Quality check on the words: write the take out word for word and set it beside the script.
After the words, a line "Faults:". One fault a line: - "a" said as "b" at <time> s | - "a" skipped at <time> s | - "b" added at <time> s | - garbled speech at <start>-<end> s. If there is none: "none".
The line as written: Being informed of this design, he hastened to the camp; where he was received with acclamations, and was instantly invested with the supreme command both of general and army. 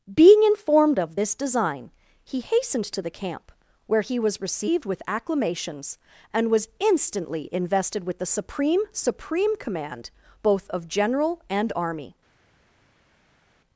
Being informed of this design, he hastened to the camp; where he was received with acclamations, and was instantly invested with the supreme supreme command both of general and army.
Faults:
- "supreme" added at 8.9 s